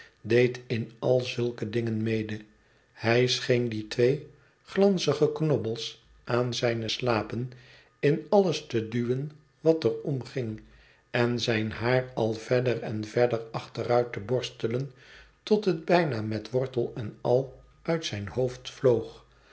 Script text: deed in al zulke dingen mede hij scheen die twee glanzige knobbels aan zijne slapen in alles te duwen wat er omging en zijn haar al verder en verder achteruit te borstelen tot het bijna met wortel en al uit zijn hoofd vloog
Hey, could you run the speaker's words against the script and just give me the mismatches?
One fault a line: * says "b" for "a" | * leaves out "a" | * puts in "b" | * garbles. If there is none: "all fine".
all fine